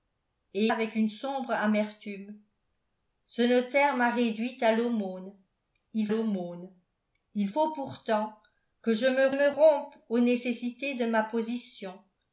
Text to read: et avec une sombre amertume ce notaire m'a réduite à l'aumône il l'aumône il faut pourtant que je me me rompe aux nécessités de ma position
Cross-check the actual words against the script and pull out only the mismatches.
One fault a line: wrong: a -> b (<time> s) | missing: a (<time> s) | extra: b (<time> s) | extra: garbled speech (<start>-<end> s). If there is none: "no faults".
no faults